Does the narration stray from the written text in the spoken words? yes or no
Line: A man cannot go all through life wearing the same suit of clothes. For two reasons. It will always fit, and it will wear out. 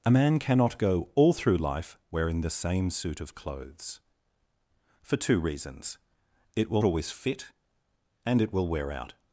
no